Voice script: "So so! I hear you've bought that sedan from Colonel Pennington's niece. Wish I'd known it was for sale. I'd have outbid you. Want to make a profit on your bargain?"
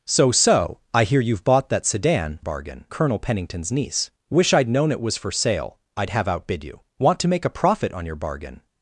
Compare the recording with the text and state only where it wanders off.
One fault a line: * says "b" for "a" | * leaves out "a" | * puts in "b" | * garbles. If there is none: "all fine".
* says "bargain" for "from"